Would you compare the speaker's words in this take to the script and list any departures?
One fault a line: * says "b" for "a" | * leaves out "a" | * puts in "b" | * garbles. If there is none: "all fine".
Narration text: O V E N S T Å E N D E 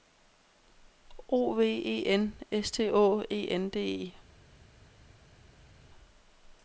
all fine